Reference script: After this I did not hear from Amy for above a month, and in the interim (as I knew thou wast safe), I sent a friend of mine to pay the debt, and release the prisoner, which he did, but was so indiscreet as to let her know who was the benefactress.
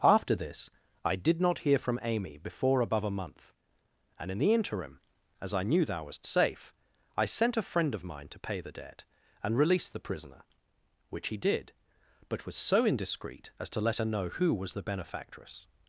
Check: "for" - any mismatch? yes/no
yes